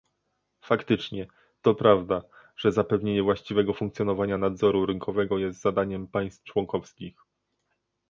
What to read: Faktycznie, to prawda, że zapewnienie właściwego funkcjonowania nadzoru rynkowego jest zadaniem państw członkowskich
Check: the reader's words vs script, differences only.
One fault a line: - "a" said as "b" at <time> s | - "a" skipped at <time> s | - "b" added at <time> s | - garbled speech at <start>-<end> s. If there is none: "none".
none